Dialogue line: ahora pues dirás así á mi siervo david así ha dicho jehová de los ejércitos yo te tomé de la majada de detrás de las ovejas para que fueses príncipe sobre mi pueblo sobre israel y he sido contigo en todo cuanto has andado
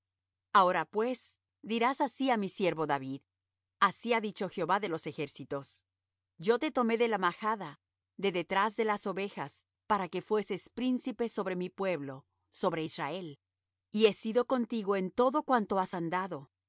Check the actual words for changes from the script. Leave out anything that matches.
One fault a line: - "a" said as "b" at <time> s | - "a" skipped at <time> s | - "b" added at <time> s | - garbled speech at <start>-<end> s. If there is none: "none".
none